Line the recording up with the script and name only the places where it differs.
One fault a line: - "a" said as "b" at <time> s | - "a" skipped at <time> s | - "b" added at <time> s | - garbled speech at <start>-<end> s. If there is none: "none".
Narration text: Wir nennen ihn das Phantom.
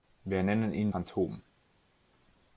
- "das" skipped at 0.9 s